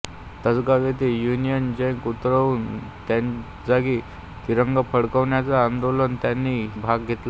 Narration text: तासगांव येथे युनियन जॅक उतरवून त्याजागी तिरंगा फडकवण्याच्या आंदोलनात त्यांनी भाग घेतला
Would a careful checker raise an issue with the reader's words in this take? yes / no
no